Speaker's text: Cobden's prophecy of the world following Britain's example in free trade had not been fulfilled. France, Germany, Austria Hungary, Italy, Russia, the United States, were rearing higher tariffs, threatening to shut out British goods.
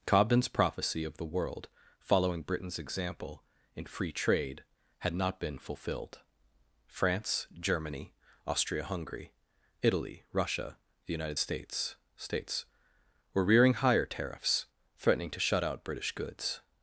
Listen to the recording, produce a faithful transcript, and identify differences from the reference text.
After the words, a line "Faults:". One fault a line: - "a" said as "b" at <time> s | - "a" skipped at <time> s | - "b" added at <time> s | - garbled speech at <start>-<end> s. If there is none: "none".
Cobden's prophecy of the world following Britain's example in free trade had not been fulfilled. France, Germany, Austria Hungary, Italy, Russia, the United States States, were rearing higher tariffs, threatening to shut out British goods.
Faults:
- "States" added at 12.1 s